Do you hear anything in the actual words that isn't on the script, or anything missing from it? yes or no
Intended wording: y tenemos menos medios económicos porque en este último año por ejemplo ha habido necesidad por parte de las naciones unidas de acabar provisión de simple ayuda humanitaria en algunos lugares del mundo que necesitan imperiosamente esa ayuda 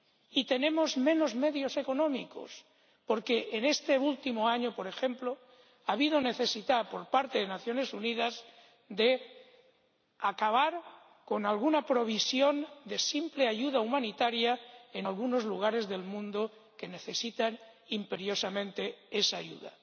yes